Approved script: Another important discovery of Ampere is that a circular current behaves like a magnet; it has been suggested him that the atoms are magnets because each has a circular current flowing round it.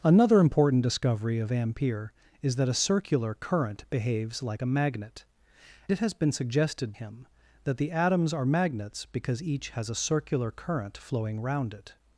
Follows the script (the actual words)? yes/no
yes